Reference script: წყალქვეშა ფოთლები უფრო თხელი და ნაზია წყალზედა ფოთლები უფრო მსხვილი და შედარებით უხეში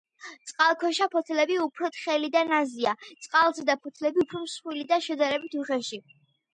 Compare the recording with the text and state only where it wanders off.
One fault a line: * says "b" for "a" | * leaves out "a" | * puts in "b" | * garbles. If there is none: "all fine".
all fine